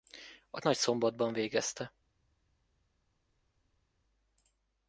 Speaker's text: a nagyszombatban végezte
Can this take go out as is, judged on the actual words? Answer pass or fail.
pass